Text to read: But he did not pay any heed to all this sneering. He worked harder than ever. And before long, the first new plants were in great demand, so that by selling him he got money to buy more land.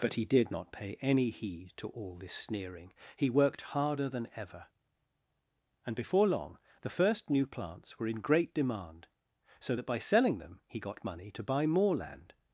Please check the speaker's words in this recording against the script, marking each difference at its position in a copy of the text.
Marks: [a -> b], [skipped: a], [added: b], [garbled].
But he did not pay any heed to all this sneering. He worked harder than ever. And before long, the first new plants were in great demand, so that by selling [him -> them] he got money to buy more land.